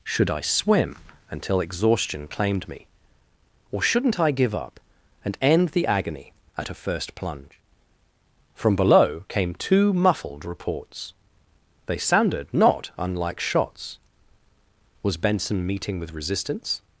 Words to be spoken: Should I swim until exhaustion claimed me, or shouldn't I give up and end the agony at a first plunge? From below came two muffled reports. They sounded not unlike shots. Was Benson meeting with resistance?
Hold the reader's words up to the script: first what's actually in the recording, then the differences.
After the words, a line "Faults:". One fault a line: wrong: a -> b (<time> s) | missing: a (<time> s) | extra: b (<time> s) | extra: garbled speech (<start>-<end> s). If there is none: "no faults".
Should I swim until exhaustion claimed me, or shouldn't I give up and end the agony at a first plunge? From below came two muffled reports. They sounded not unlike shots. Was Benson meeting with resistance?
Faults:
no faults